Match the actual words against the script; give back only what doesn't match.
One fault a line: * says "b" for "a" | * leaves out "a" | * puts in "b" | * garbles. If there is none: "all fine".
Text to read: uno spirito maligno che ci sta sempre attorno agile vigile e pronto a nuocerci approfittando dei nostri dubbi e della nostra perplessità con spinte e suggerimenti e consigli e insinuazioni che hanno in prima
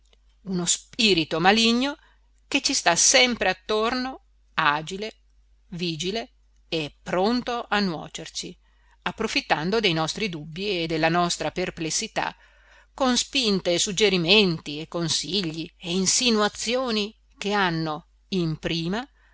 all fine